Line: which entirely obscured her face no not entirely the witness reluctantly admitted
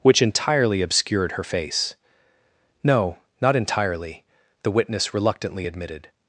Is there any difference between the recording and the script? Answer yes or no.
no